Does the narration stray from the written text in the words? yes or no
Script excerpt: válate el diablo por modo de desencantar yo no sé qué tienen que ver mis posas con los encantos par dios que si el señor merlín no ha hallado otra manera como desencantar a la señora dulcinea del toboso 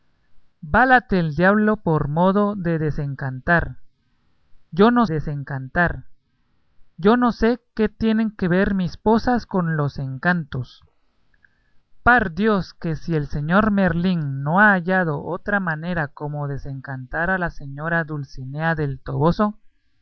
yes